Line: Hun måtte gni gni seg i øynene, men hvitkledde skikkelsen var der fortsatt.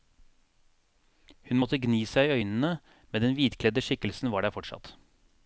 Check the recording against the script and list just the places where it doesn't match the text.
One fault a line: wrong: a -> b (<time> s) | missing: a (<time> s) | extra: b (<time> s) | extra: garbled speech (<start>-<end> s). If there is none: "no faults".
missing: gni (2.0 s)
extra: den (3.2 s)